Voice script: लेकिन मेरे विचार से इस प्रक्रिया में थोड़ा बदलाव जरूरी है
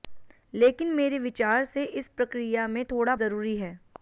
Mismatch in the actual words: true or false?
true